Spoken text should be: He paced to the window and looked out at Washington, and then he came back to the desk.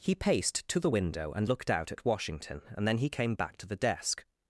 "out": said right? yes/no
yes